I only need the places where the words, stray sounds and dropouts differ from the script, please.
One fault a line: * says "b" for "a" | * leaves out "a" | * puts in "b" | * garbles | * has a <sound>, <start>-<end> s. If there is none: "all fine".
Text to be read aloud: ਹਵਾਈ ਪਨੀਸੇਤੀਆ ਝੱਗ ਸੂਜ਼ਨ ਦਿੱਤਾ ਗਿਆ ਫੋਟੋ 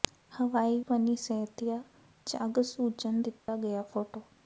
* has a dropout, 3.4-3.5 s